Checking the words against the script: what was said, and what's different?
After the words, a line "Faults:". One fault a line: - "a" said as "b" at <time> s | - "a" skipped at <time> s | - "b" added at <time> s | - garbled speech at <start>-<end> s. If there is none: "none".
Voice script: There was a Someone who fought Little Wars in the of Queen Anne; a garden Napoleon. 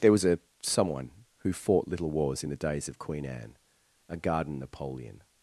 There was a Someone who fought Little Wars in the days of Queen Anne; a garden Napoleon.
Faults:
- "days" added at 2.5 s